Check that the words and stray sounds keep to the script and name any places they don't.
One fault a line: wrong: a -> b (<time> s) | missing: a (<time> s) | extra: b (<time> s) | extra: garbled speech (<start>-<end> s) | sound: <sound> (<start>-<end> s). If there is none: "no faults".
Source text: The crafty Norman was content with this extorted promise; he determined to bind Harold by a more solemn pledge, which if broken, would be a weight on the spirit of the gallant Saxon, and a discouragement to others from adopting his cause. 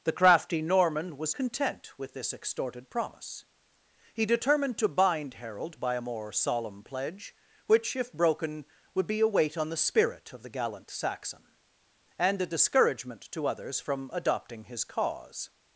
no faults